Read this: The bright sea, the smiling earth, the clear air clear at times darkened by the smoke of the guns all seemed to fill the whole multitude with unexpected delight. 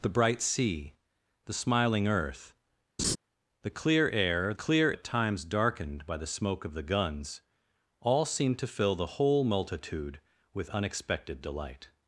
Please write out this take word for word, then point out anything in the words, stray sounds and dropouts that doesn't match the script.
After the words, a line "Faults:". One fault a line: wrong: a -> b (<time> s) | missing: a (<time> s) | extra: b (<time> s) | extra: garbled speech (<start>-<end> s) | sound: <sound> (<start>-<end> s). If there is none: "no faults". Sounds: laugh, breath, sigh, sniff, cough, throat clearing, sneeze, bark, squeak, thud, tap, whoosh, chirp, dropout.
The bright sea, the smiling earth, the clear air clear at times darkened by the smoke of the guns all seemed to fill the whole multitude with unexpected delight.
Faults:
sound: laugh (3.0-3.2 s)